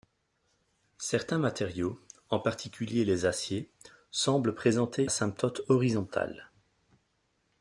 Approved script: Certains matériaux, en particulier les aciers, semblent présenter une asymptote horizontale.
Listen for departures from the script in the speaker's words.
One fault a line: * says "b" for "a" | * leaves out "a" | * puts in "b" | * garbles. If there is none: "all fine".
* leaves out "une"